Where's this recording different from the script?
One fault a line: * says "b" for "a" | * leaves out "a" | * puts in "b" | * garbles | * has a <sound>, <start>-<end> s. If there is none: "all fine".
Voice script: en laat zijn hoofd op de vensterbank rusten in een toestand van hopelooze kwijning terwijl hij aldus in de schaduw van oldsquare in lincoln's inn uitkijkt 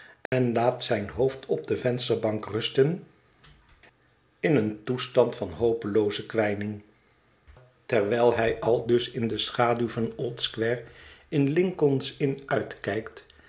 * has a dropout, 0.3-0.3 s